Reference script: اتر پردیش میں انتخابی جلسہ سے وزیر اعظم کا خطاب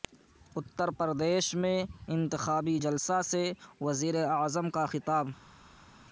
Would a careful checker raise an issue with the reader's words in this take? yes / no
no